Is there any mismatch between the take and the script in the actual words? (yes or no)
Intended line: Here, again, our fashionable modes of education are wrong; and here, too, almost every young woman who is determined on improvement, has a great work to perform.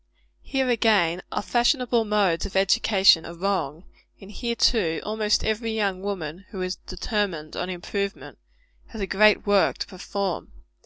no